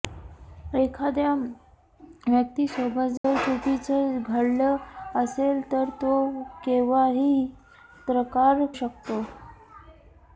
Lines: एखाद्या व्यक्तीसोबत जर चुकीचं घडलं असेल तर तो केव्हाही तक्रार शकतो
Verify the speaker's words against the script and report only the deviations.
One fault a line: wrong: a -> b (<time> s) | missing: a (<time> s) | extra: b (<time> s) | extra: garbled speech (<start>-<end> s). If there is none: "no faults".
no faults